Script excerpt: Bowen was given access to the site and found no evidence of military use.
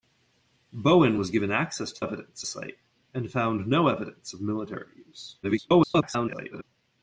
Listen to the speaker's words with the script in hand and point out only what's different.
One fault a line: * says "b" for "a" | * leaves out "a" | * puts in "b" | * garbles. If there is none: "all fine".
* says "evidence" for "the"
* garbles